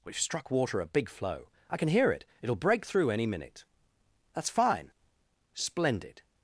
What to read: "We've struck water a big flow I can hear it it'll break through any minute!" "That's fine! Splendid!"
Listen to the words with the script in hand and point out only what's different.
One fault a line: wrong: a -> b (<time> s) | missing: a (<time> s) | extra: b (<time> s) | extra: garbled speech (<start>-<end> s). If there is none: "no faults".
no faults